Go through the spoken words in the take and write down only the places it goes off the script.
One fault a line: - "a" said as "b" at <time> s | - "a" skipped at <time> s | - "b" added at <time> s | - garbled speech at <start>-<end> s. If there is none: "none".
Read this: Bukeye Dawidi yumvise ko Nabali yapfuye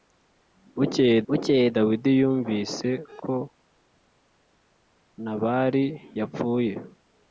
- "bukeye" added at 1.3 s